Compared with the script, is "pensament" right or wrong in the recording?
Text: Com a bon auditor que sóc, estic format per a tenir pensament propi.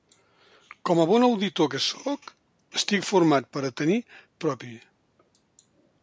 wrong